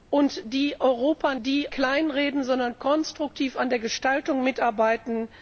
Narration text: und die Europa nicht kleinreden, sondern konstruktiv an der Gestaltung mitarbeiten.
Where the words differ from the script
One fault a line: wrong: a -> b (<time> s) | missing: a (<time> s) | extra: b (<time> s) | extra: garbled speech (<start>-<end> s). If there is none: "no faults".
wrong: nicht -> die (1.5 s)